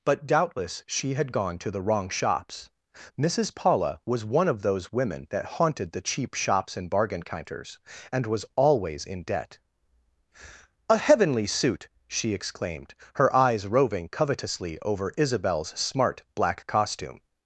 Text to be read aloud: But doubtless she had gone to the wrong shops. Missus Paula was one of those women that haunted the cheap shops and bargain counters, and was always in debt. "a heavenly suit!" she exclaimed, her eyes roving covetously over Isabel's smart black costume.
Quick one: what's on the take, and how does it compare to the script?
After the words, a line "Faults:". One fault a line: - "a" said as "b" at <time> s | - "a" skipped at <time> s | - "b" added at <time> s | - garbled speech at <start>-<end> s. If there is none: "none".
But doubtless she had gone to the wrong shops. Missus Paula was one of those women that haunted the cheap shops and bargain counters, and was always in debt. "a heavenly suit!" she exclaimed, her eyes roving covetously over Isabel's smart black costume.
Faults:
none